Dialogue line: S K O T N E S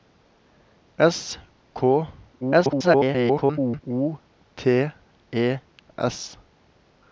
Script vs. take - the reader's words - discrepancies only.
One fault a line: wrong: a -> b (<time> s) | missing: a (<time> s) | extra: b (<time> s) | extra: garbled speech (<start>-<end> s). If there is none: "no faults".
extra: garbled speech (2.4-3.8 s)
missing: N (4.9 s)